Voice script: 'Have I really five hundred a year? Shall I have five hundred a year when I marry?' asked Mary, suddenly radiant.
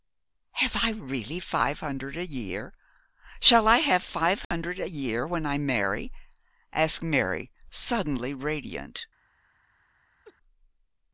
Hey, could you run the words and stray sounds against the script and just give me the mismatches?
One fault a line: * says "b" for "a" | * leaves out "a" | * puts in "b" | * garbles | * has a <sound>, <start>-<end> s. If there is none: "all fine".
* has a dropout, 4.4-4.5 s
* has a laugh, 10.2-10.4 s